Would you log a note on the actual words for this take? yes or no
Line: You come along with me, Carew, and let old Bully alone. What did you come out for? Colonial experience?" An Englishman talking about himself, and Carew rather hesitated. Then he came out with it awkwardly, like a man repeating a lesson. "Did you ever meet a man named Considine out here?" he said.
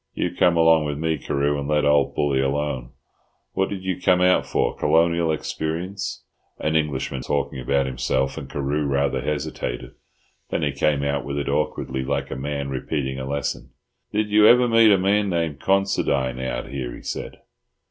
no